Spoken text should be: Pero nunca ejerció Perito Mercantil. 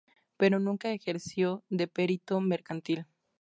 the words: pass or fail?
fail